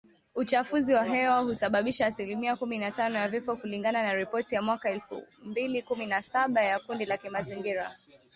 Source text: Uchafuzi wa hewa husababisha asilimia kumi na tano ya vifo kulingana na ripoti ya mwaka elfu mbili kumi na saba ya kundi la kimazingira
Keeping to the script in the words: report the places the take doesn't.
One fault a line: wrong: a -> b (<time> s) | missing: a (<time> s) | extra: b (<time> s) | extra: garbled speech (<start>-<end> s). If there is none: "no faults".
no faults